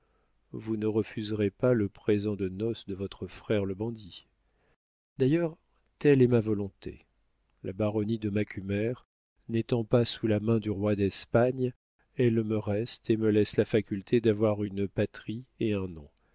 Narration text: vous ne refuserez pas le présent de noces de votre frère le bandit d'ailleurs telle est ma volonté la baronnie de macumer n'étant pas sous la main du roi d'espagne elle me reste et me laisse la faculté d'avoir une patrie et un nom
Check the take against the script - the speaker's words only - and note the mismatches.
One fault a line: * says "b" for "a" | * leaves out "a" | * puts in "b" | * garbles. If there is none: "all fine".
all fine